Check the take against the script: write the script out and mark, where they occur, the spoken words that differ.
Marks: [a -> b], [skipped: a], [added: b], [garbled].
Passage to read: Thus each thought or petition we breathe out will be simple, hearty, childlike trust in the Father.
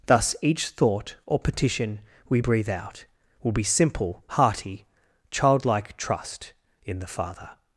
Thus each thought or petition we breathe out will be simple, hearty, childlike trust in the Father.